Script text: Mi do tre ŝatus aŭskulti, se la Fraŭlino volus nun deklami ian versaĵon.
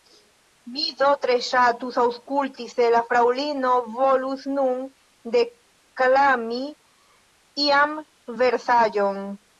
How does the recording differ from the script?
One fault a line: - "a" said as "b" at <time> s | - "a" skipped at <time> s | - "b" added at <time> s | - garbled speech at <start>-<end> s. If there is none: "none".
none